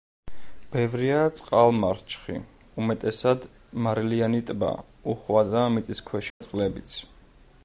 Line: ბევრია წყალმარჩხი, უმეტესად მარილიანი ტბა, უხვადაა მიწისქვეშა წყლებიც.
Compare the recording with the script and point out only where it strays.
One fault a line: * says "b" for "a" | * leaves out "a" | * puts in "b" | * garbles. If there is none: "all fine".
all fine